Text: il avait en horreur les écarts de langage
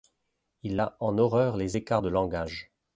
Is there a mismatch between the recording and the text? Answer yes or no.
yes